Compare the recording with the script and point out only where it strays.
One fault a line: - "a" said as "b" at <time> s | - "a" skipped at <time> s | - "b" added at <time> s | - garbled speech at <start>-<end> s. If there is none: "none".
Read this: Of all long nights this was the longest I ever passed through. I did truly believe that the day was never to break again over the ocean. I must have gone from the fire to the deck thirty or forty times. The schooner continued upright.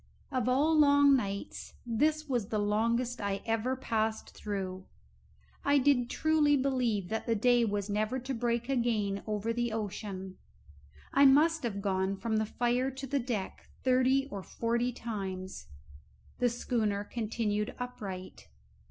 none